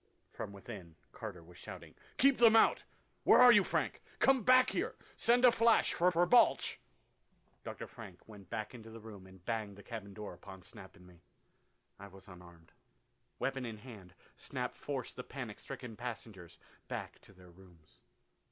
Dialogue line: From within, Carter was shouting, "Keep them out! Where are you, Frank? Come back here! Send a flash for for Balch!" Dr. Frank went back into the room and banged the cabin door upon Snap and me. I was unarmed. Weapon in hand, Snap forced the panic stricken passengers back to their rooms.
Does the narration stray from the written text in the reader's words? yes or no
no